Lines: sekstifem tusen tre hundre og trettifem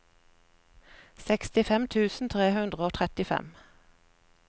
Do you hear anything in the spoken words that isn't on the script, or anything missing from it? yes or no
no